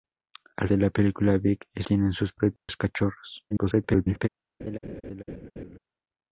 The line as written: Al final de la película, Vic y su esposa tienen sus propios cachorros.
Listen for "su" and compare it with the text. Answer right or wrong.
wrong